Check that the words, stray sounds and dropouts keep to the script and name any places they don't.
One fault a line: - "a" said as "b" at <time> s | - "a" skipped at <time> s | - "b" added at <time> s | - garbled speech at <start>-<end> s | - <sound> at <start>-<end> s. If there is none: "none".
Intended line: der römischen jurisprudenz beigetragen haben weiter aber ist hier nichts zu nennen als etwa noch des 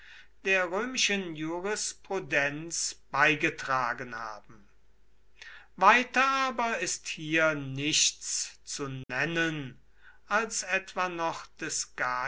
- dropout at 9.0-9.1 s